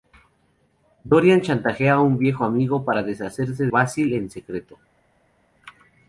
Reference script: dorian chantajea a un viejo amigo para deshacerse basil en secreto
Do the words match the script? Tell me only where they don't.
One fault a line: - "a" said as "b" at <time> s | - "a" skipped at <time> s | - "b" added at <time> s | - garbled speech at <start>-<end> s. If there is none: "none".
none